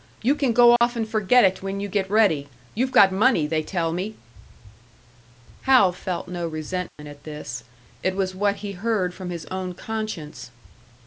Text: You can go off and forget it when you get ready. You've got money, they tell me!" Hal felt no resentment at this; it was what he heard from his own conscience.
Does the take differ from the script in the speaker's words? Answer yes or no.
no